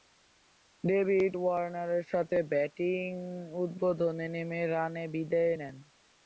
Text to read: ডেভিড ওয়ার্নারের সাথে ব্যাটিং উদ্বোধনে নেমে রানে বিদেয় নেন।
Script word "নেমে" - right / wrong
right